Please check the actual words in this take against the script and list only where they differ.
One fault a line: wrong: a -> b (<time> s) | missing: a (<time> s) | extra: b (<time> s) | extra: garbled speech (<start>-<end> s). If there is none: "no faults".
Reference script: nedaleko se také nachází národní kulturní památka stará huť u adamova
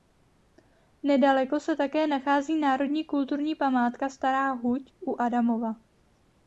no faults